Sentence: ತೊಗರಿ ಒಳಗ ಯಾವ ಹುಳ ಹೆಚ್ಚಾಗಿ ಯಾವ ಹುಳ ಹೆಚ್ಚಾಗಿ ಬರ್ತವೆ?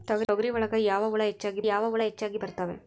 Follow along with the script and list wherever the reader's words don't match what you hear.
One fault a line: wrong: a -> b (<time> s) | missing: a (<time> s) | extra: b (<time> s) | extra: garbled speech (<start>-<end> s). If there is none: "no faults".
no faults